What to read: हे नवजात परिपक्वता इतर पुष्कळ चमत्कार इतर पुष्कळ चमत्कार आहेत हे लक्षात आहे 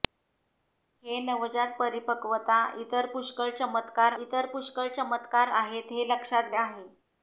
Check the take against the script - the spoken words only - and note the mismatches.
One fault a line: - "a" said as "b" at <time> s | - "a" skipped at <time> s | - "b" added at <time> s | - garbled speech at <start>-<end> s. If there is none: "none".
none